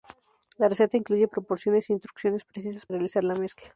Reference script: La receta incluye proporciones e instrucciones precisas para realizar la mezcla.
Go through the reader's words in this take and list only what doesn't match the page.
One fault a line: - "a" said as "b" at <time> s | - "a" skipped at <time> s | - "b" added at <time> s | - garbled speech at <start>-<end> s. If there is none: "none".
- "para" skipped at 2.9 s